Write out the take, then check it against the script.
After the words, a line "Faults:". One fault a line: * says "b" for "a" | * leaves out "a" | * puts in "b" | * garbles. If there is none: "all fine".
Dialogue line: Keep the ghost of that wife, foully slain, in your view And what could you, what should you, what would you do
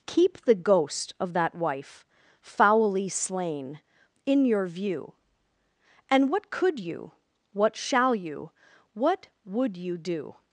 Keep the ghost of that wife, foully slain, in your view And what could you, what shall you, what would you do
Faults:
* says "shall" for "should"